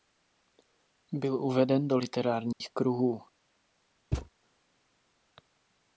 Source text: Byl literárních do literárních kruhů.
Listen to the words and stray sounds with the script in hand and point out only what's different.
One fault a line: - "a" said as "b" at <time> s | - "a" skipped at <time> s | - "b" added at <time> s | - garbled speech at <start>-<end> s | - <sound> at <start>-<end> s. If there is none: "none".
- "literárních" said as "uveden" at 1.4 s
- dropout at 2.5-2.6 s
- thud at 4.1-4.3 s